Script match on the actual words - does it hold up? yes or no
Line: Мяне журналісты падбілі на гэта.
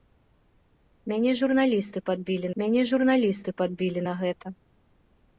no